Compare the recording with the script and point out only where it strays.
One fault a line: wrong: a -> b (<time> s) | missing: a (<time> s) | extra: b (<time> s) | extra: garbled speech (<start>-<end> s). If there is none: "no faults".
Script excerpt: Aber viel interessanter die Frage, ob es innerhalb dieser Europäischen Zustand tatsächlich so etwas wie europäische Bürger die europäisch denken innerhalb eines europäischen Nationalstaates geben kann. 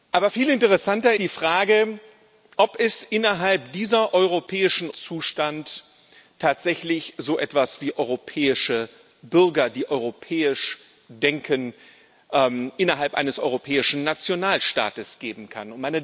no faults